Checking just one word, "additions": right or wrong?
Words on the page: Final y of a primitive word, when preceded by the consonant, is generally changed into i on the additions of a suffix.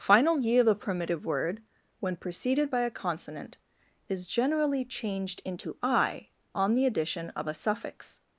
wrong